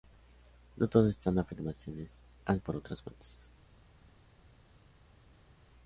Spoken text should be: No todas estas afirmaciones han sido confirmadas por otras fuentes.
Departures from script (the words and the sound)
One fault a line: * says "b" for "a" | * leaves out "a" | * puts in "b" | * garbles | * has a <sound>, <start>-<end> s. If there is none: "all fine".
* leaves out "sido confirmadas"